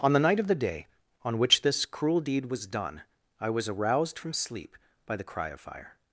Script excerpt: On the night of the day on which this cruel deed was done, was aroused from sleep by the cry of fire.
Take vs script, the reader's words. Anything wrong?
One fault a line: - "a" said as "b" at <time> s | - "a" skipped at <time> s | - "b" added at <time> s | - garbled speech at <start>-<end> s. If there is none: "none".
- "I" added at 3.4 s